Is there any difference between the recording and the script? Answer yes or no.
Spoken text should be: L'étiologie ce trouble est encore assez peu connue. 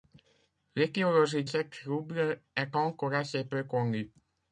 no